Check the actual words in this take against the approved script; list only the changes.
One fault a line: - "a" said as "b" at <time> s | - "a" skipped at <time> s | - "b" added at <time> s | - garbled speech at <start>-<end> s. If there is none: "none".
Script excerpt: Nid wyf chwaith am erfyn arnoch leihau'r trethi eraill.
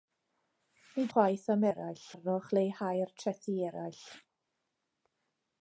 - "wyf" skipped at 1.1 s
- "erfyn" said as "eraill" at 1.7 s